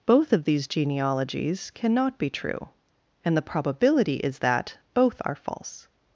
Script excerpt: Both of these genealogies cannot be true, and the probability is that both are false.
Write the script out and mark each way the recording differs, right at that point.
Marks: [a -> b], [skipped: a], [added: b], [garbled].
Both of these genealogies cannot be true, and the probability is that both are false.